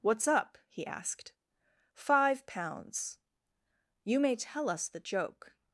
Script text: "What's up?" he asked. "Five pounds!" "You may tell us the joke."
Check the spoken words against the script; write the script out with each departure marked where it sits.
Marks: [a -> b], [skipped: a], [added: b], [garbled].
"What's up?" he asked. "Five pounds!" "You may tell us the joke."